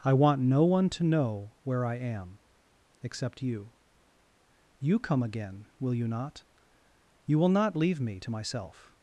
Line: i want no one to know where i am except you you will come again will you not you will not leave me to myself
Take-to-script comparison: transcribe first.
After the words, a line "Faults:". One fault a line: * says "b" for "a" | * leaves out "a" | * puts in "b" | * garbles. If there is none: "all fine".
i want no one to know where i am except you you come again will you not you will not leave me to myself
Faults:
* leaves out "will"